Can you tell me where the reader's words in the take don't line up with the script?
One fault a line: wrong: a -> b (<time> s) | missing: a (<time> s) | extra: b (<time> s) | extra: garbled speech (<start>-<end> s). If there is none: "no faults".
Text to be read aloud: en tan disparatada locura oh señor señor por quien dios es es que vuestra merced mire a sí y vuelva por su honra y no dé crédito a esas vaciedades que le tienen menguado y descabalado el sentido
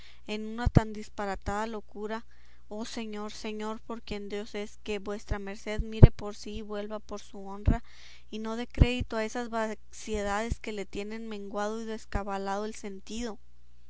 extra: una (0.5 s)
missing: es (4.8 s)
wrong: a -> por (6.1 s)